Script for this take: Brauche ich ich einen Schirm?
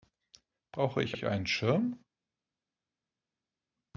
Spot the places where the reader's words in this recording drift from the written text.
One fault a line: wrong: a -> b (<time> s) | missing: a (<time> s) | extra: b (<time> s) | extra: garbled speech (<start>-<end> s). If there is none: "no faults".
no faults